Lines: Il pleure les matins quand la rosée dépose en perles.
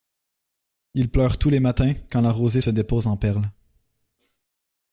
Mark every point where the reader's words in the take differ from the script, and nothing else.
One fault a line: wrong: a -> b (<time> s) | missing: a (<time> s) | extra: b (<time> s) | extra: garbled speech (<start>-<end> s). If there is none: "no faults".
extra: tous (1.4 s)
extra: se (2.6 s)